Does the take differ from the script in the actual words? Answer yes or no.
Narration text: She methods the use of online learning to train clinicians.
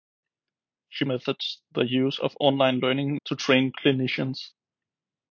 no